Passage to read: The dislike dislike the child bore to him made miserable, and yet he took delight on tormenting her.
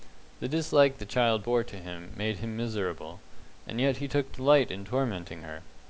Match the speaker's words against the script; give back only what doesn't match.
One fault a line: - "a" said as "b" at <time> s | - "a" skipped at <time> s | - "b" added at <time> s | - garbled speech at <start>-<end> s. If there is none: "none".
- "dislike" skipped at 1.0 s
- "him" added at 2.4 s
- "on" said as "in" at 4.7 s